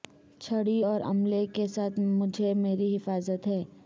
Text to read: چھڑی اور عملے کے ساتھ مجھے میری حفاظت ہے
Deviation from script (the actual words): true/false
false